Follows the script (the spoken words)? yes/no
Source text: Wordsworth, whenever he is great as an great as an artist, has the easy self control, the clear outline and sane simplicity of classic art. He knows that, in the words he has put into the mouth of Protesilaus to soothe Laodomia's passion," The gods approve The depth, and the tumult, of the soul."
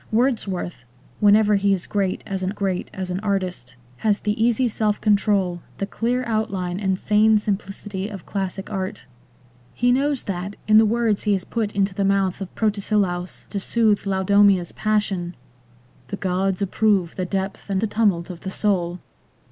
yes